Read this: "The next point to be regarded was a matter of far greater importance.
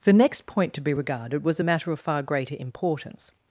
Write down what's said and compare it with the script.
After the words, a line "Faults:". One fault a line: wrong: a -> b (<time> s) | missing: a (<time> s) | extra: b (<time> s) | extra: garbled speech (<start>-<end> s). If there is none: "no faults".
"The next point to be regarded was a matter of far greater importance.
Faults:
no faults